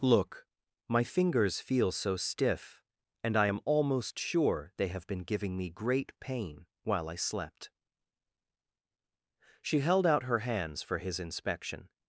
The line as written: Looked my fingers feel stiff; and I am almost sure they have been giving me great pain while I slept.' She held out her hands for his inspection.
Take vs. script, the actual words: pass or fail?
fail